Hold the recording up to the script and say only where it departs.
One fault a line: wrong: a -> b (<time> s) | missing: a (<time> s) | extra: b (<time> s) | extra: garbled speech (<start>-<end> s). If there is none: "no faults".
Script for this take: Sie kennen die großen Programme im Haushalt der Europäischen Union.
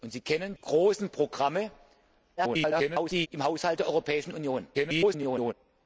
missing: die (0.6 s)
extra: garbled speech (2.4-3.3 s)
extra: garbled speech (4.7-5.5 s)